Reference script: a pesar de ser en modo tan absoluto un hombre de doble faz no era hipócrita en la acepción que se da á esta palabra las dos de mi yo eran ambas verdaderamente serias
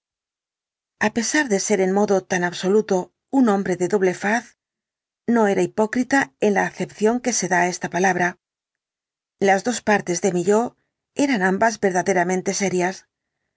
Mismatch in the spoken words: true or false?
true